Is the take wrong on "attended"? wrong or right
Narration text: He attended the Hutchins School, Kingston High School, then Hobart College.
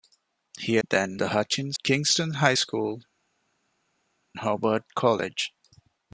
wrong